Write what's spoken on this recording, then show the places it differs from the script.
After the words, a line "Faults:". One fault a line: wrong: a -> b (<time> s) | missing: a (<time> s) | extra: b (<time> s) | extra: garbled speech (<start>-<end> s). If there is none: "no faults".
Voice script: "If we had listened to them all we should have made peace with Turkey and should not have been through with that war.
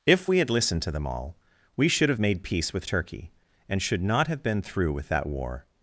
"If we had listened to them all we should have made peace with Turkey and should not have been through with that war.
Faults:
no faults